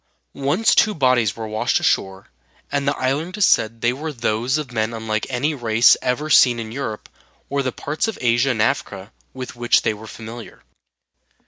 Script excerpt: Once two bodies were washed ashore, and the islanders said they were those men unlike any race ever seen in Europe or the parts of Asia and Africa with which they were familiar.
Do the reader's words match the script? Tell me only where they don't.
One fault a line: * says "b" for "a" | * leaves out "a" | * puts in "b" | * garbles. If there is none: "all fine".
* puts in "of"